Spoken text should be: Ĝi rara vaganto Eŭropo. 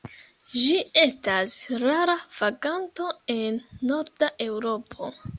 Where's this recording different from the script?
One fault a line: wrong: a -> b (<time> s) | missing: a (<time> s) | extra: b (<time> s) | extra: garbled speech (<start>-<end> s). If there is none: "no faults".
extra: estas (1.0 s)
extra: en norda (3.3 s)